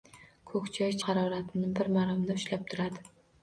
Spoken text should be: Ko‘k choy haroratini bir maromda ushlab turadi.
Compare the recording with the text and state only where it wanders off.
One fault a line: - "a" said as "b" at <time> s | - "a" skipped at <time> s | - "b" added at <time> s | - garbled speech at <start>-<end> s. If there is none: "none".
none